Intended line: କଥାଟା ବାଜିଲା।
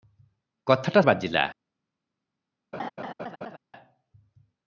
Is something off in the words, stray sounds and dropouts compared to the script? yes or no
yes